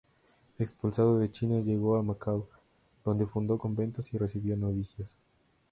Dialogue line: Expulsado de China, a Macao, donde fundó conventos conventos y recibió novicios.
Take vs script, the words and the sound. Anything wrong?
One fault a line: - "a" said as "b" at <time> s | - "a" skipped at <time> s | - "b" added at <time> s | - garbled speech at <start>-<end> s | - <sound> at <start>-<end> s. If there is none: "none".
- "llegó" added at 1.6 s
- "conventos" skipped at 4.1 s